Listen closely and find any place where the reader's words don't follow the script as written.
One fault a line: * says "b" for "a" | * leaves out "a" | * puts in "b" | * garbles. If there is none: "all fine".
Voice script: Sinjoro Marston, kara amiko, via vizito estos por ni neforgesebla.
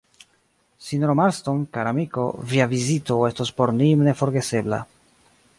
all fine